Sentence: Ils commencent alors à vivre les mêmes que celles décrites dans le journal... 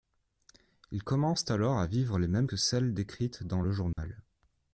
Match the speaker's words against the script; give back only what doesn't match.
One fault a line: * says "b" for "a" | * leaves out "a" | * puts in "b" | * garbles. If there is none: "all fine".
all fine